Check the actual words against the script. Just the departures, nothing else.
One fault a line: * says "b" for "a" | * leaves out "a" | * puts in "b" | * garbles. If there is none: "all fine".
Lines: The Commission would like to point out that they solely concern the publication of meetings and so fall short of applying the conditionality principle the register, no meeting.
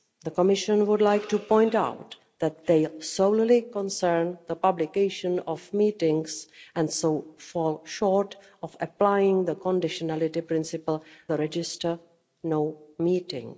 all fine